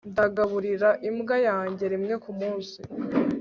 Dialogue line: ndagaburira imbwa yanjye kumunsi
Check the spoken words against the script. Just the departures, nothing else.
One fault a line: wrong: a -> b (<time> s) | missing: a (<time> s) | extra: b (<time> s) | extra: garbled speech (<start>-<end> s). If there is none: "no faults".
extra: rimwe (1.9 s)